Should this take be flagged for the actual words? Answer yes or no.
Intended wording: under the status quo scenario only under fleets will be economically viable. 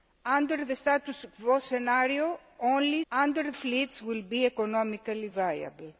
no